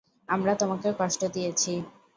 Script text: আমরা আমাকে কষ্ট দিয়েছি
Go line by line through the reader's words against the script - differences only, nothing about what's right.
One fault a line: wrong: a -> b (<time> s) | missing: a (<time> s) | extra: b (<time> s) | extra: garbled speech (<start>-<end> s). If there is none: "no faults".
wrong: আমাকে -> তোমাকে (0.5 s)